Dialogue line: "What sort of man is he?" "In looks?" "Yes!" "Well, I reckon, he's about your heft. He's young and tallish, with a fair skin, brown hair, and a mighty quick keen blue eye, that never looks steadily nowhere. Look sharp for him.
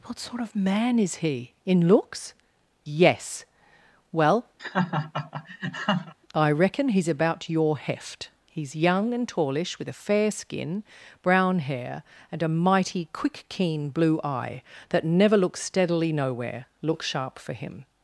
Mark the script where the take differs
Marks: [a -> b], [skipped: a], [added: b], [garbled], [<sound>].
"What sort of man is he?" "In looks?" "Yes!" "Well, [laugh] I reckon, he's about your heft. He's young and tallish, with a fair skin, brown hair, and a mighty quick keen blue eye, that never looks steadily nowhere. Look sharp for him.